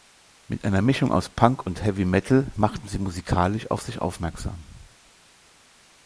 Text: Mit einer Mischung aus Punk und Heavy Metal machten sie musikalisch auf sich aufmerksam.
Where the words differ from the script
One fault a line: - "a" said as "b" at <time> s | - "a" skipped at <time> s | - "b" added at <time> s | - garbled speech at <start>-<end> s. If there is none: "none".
none